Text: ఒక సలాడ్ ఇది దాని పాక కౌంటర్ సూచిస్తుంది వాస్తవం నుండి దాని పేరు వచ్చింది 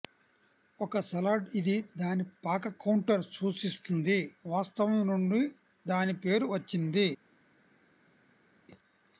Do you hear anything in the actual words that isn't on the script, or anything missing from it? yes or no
no